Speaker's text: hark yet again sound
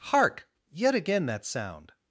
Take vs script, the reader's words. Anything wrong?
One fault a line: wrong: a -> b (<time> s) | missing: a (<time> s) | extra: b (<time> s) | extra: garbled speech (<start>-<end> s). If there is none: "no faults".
extra: that (1.3 s)